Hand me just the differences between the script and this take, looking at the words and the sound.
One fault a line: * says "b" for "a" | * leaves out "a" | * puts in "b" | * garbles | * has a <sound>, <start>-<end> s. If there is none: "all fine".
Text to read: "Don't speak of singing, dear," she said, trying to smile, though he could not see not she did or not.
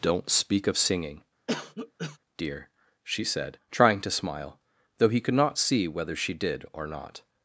* has a cough, 1.5-2.2 s
* says "whether" for "not"